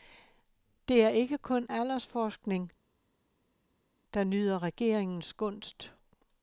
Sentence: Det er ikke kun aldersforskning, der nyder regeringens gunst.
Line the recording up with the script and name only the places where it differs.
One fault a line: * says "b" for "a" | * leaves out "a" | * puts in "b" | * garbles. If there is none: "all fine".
all fine